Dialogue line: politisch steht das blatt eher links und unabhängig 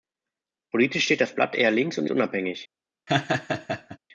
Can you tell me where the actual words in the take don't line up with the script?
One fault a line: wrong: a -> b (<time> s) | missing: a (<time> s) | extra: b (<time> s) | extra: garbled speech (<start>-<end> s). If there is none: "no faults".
no faults